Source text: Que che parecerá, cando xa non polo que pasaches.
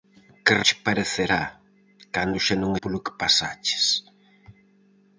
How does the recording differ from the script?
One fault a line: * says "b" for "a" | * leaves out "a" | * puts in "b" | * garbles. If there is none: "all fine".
all fine